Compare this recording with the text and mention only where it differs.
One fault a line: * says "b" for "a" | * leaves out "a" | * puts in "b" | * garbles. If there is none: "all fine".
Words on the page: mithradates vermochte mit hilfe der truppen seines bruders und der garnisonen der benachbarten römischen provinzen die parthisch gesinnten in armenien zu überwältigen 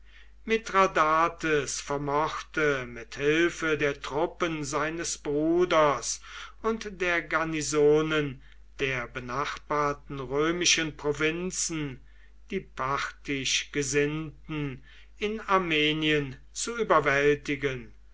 all fine